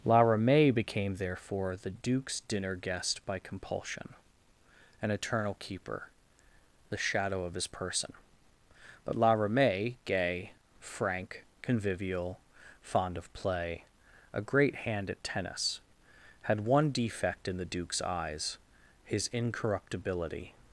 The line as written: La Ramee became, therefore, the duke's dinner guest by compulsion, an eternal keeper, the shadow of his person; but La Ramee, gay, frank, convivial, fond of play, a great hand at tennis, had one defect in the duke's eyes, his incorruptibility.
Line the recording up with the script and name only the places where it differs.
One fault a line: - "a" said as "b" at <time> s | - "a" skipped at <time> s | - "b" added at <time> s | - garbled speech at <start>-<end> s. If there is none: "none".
none